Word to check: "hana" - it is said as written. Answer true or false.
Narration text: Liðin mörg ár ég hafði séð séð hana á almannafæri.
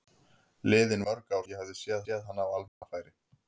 true